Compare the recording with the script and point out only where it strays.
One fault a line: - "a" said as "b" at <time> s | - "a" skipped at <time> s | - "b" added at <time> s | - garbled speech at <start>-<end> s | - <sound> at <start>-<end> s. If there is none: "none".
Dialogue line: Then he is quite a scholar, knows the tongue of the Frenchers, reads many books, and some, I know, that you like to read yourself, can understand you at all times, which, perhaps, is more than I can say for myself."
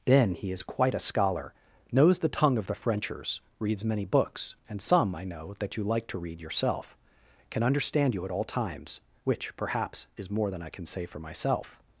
none